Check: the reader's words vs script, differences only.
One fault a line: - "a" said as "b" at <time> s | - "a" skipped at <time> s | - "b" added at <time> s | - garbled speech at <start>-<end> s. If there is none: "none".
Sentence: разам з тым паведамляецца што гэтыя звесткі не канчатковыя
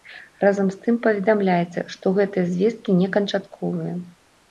none